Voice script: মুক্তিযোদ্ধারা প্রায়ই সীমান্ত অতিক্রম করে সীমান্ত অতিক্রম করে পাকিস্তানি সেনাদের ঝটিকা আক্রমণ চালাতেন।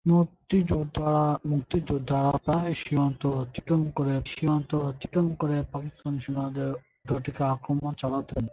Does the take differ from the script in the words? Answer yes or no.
no